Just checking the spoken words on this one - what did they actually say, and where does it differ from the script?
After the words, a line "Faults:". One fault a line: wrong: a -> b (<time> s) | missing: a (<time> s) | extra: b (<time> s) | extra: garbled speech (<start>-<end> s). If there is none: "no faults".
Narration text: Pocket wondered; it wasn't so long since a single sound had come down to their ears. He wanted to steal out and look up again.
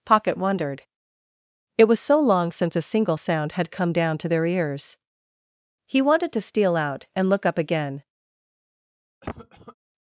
Pocket wondered; it was so long since a single sound had come down to their ears. He wanted to steal out and look up again.
Faults:
wrong: wasn't -> was (1.9 s)